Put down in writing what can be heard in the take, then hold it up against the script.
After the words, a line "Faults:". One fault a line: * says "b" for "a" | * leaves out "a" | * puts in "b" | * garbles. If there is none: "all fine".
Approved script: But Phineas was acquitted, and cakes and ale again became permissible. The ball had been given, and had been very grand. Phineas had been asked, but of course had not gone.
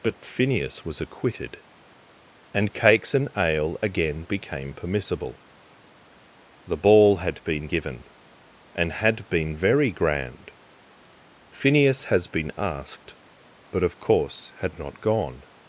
But Phineas was acquitted, and cakes and ale again became permissible. The ball had been given, and had been very grand. Phineas has been asked, but of course had not gone.
Faults:
* says "has" for "had"